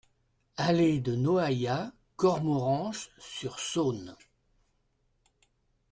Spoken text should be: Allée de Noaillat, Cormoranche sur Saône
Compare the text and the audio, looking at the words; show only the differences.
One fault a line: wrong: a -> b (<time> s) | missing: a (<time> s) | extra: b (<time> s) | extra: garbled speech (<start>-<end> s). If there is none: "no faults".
no faults